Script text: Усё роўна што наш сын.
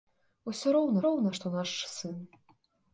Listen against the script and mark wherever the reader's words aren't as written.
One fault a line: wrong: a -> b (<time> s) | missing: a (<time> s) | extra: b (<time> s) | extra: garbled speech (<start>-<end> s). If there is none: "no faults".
extra: роўна (1.1 s)